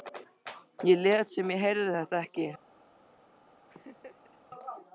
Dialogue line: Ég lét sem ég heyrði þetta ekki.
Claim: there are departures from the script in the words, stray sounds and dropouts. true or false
true